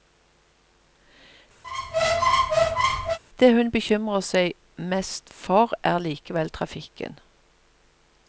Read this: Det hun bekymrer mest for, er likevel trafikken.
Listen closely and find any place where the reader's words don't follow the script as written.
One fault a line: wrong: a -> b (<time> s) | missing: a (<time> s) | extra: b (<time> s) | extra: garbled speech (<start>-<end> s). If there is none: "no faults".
extra: seg (4.3 s)